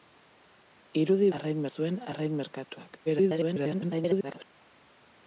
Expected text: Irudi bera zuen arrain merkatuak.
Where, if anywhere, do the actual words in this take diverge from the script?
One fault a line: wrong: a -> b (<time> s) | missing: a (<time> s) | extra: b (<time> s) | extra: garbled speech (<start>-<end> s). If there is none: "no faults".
wrong: bera -> arrain (1.4 s)
extra: garbled speech (3.1-4.4 s)